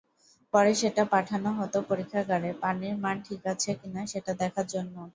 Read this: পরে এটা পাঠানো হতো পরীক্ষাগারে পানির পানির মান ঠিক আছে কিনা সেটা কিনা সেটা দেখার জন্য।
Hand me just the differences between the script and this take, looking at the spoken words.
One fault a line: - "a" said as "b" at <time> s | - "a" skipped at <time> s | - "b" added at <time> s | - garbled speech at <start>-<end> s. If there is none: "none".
- "এটা" said as "সেটা" at 0.8 s
- "পানির" skipped at 3.0 s
- "কিনা সেটা" skipped at 4.3 s